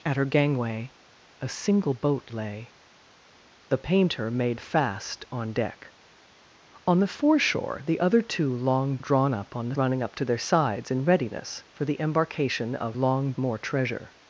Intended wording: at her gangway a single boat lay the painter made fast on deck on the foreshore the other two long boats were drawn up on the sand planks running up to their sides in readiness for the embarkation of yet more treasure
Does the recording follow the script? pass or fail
fail